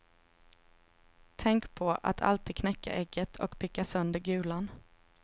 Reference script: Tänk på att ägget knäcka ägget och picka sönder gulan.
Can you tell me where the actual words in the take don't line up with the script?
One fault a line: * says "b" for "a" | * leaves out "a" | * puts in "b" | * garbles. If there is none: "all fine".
* says "alltid" for "ägget"